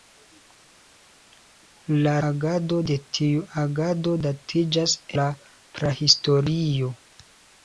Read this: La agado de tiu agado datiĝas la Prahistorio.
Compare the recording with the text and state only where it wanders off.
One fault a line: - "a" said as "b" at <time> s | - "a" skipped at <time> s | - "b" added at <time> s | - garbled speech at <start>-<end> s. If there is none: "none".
none